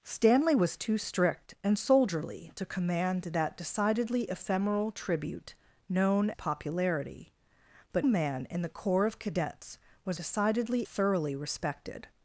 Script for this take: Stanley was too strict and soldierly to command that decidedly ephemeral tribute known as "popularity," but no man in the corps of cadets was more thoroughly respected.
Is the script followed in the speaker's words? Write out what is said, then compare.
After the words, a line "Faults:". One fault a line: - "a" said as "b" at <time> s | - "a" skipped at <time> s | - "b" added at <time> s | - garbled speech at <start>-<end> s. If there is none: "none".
Stanley was too strict and soldierly to command that decidedly ephemeral tribute known "popularity," but man in the corps of cadets was decidedly thoroughly respected.
Faults:
- "as" skipped at 6.3 s
- "no" skipped at 8.1 s
- "more" said as "decidedly" at 10.1 s